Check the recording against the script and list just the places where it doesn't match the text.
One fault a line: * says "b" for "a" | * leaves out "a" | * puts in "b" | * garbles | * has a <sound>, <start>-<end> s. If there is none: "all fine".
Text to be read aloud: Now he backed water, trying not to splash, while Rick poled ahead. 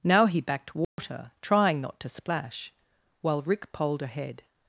* has a dropout, 0.8-1.0 s